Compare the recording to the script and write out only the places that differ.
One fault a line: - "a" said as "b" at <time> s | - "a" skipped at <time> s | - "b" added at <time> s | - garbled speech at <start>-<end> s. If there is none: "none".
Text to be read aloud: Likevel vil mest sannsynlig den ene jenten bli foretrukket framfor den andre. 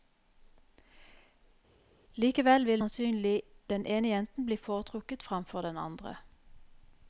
- "mest" skipped at 2.8 s